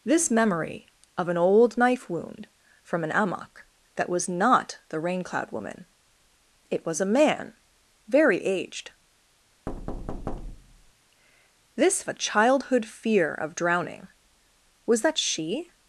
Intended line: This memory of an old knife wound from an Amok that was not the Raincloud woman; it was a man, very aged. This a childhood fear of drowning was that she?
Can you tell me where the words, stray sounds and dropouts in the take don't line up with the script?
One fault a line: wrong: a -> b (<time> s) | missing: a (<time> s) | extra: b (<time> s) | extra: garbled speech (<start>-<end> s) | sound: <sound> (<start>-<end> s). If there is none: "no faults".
sound: thud (9.7-10.9 s)